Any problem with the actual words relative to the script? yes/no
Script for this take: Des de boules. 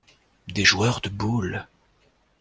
yes